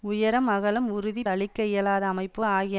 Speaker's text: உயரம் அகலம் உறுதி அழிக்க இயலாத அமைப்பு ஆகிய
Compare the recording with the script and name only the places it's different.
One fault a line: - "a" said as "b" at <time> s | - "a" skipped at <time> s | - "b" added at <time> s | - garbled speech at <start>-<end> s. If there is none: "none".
none